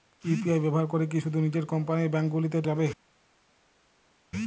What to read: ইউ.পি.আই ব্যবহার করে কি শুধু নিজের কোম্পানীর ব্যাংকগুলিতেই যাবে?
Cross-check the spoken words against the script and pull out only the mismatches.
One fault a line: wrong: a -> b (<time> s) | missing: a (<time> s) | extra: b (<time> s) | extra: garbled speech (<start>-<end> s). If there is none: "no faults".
no faults